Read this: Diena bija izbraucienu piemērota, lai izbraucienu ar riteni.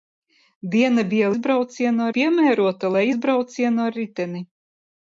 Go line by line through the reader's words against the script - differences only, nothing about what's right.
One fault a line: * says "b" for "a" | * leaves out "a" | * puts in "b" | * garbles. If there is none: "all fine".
all fine